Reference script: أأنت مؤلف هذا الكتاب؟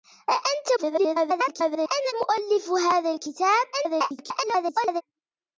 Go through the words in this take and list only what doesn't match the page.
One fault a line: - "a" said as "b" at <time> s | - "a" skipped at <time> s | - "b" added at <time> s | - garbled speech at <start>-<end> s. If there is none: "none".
- garbled speech at 0.8-2.1 s
- garbled speech at 3.7-5.0 s